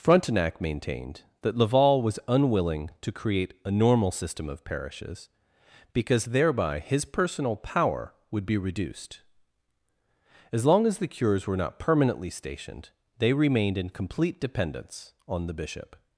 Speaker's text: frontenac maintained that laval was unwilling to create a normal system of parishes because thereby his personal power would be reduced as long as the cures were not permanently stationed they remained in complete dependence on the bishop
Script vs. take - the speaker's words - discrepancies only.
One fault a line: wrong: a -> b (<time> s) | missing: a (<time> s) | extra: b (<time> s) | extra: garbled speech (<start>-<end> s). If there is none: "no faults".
no faults